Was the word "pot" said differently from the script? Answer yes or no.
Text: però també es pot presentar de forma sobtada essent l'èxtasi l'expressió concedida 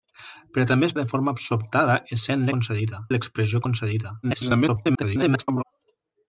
yes